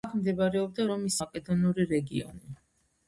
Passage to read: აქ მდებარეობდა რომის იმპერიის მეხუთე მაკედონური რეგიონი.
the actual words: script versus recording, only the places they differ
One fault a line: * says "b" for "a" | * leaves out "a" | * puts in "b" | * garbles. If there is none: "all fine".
* leaves out "იმპერიის მეხუთე"